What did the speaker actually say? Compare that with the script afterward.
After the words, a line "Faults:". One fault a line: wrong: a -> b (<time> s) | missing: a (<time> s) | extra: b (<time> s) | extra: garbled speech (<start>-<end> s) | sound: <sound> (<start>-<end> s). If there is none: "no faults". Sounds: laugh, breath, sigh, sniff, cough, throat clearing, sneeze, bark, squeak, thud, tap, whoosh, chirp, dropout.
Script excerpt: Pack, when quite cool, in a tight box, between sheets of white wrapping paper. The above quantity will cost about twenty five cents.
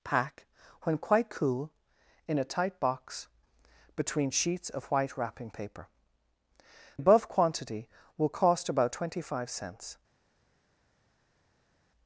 Pack, when quite cool, in a tight box, between sheets of white wrapping paper. Above quantity will cost about twenty five cents.
Faults:
missing: The (5.9 s)